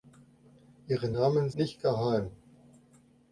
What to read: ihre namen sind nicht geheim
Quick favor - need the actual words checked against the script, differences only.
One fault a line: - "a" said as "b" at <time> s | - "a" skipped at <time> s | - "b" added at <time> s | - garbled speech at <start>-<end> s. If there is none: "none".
- "sind" skipped at 1.5 s